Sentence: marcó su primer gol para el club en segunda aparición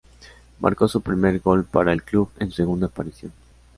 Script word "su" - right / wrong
right